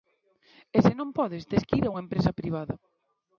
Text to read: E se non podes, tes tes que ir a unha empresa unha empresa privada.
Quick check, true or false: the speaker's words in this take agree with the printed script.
false